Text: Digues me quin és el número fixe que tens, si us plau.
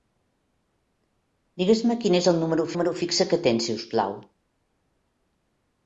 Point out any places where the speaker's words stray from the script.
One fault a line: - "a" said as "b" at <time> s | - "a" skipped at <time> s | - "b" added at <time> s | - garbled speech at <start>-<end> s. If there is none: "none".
- "número" added at 2.7 s